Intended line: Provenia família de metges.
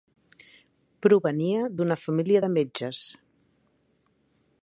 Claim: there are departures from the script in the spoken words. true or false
true